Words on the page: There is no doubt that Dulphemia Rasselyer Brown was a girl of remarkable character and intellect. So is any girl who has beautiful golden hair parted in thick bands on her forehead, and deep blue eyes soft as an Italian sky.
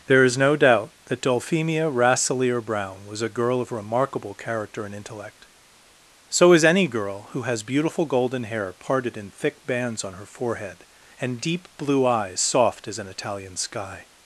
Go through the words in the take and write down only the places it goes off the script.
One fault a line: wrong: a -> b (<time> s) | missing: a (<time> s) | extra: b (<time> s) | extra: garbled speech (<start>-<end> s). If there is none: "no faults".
no faults